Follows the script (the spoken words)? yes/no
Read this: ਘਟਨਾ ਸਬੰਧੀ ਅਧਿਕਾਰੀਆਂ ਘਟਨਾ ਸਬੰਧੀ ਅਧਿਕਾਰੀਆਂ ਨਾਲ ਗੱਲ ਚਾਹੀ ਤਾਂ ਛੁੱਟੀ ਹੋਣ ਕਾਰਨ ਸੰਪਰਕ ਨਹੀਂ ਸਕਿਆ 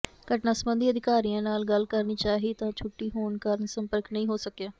no